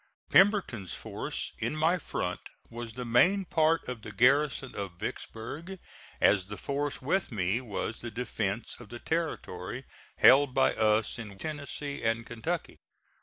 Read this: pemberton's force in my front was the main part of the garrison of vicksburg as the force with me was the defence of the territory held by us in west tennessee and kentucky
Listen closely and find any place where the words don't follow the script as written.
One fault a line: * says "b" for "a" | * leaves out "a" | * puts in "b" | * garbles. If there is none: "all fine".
* leaves out "west"